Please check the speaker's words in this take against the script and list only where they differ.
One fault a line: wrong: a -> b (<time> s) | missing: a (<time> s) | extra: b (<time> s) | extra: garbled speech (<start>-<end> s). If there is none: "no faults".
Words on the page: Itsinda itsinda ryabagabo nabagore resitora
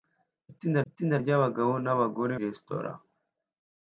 no faults